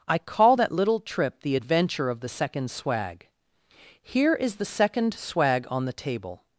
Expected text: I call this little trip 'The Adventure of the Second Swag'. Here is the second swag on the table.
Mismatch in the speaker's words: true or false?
true